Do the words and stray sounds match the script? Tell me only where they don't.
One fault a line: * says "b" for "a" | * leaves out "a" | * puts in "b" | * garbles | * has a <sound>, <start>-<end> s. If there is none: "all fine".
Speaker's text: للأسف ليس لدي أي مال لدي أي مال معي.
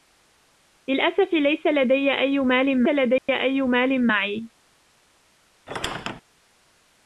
* has a dropout, 3.2-3.3 s
* has a squeak, 5.7-6.2 s